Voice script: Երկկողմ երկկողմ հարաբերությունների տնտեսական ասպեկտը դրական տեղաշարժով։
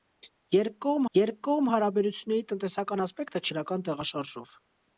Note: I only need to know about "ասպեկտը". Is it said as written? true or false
true